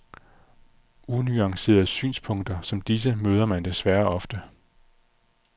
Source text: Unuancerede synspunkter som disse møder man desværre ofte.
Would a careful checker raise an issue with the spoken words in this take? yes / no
no